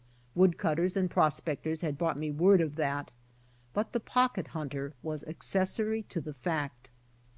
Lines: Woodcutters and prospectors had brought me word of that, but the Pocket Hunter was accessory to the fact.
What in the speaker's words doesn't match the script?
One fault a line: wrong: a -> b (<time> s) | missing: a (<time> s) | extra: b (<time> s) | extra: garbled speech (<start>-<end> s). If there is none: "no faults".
no faults